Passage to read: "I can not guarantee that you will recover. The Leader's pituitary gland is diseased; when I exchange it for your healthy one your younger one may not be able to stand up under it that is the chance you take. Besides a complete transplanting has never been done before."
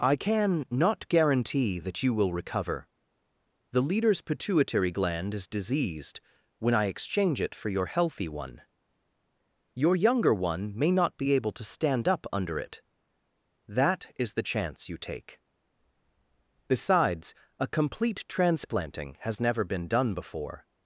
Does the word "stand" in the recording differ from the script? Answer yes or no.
no